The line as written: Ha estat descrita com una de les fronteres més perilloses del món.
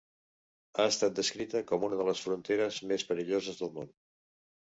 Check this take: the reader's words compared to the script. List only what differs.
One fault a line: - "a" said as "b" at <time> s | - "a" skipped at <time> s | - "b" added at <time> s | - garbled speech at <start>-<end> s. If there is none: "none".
none